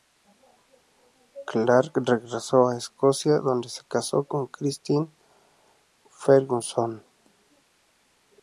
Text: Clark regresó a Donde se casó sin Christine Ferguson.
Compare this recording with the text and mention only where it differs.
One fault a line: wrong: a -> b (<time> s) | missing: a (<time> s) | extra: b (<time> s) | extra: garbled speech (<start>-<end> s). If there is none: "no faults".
extra: Escocia (2.8 s)
wrong: sin -> con (4.2 s)